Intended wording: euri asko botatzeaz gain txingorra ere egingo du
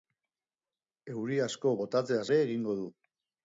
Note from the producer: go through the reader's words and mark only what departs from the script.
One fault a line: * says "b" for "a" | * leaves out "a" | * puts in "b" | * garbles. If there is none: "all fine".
* leaves out "gain txingorra"